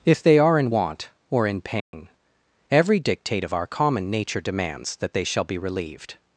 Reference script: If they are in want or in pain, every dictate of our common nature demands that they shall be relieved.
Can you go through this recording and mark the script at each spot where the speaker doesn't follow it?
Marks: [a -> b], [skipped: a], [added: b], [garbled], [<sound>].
If they are in want or in pain, [dropout] every dictate of our common nature demands that they shall be relieved.